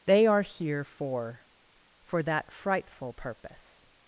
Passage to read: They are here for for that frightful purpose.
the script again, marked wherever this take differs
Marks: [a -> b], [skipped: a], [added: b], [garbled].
They are here for for that frightful purpose.